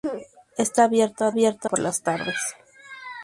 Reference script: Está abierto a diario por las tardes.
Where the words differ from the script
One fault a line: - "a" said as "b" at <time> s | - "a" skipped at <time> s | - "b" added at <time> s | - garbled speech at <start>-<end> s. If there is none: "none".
- "diario" said as "abierto" at 1.3 s